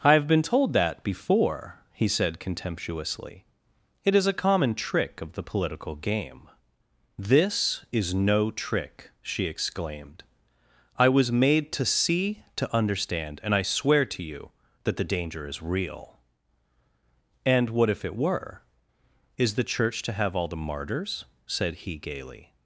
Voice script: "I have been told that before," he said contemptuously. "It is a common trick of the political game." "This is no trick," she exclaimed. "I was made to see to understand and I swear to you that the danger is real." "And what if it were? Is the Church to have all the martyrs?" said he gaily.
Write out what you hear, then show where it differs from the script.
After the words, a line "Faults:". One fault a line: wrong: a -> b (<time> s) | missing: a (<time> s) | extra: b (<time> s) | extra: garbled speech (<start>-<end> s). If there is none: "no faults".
"I have been told that before," he said contemptuously. "It is a common trick of the political game." "This is no trick," she exclaimed. "I was made to see to understand and I swear to you that the danger is real." "And what if it were? Is the Church to have all the martyrs?" said he gaily.
Faults:
no faults